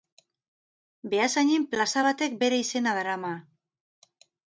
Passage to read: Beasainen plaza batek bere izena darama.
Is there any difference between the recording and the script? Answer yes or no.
no